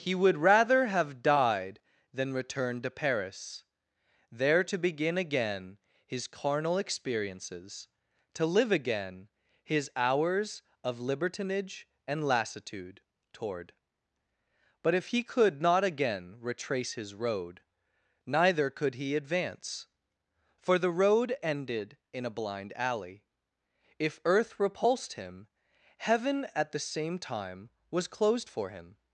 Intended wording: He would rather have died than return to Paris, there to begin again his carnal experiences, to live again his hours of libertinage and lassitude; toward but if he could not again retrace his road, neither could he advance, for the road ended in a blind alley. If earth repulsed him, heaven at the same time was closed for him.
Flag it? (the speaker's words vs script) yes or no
no